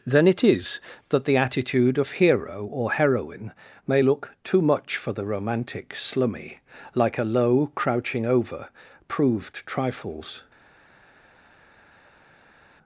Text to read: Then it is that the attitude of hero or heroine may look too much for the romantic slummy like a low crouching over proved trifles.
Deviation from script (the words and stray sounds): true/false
false